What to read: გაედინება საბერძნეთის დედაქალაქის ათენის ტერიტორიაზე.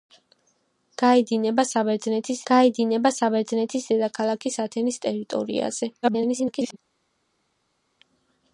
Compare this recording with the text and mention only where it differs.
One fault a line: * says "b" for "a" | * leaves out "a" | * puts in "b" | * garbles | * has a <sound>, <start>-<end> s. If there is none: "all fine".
* puts in "გაედინება საბერძნეთის"
* garbles